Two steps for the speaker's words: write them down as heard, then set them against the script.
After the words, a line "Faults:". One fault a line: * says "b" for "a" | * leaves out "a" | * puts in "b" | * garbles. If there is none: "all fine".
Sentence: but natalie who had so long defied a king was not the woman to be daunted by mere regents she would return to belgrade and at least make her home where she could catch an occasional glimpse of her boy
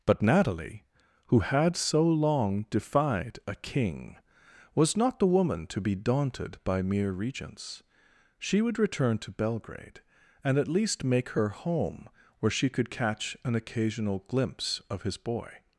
but natalie who had so long defied a king was not the woman to be daunted by mere regents she would return to belgrade and at least make her home where she could catch an occasional glimpse of his boy
Faults:
* says "his" for "her"